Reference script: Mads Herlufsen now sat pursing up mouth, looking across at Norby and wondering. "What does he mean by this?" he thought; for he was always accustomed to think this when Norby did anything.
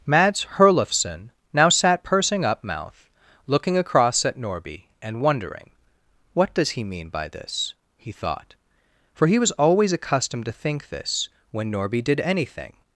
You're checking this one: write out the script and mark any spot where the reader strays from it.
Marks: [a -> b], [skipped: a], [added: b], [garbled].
Mads Herlufsen now sat pursing up mouth, looking across at Norby and wondering. "What does he mean by this?" he thought; for he was always accustomed to think this when Norby did anything.